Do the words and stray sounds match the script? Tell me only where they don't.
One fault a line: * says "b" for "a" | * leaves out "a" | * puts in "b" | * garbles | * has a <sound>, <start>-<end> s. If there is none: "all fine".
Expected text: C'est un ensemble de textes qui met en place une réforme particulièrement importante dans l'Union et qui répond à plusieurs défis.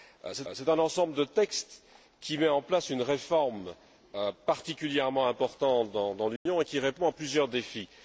* puts in "c'est"
* has a dropout, 6.4-6.5 s